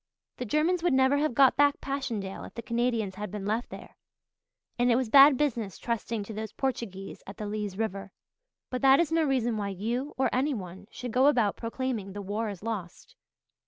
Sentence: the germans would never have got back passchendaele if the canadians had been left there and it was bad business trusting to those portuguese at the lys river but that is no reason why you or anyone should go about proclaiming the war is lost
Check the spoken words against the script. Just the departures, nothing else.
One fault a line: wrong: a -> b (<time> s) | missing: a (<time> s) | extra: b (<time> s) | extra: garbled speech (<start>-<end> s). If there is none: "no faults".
no faults